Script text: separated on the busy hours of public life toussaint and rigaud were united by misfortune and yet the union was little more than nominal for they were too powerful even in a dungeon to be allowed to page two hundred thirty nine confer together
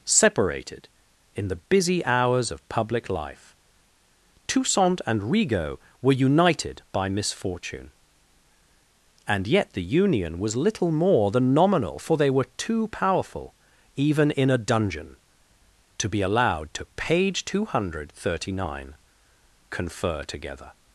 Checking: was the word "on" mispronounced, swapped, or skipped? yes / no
yes